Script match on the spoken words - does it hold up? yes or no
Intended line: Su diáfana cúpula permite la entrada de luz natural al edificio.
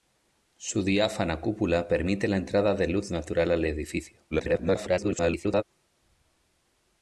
no